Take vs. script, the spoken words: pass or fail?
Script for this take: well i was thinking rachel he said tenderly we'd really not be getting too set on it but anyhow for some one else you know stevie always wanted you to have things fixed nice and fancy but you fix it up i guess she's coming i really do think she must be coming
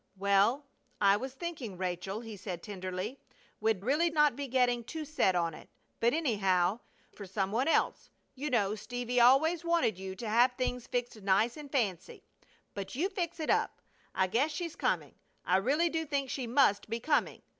pass